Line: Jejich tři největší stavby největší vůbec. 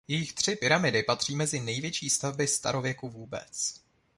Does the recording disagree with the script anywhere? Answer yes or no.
yes